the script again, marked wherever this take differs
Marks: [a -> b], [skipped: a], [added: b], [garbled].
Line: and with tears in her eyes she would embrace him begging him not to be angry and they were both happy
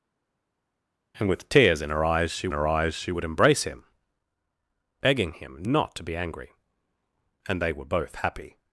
and with tears in her eyes she [added: her eyes she] would embrace him begging him not to be angry and they were both happy